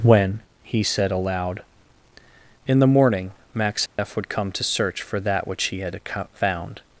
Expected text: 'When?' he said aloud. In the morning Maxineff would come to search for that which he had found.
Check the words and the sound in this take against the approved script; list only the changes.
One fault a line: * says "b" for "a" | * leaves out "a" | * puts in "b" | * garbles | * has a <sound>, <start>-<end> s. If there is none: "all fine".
* has a dropout, 3.9-4.0 s